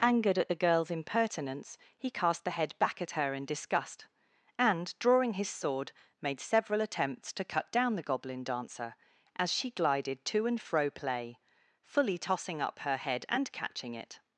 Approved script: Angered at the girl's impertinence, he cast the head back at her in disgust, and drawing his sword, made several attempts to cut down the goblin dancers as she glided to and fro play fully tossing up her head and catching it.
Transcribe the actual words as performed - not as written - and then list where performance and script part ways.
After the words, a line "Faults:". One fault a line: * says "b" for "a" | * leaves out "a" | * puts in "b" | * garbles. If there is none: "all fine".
Angered at the girl's impertinence, he cast the head back at her in disgust, and drawing his sword, made several attempts to cut down the goblin dancer as she glided to and fro play fully tossing up her head and catching it.
Faults:
* says "dancer" for "dancers"